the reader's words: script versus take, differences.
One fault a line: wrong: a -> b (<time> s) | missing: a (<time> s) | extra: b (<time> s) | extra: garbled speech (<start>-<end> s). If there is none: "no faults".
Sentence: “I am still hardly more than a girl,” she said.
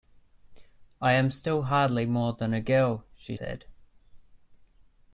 no faults